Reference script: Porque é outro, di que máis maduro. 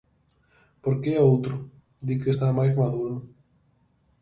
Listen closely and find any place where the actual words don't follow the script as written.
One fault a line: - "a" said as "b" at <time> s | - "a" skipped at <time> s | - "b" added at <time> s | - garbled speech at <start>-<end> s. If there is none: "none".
- "está" added at 2.3 s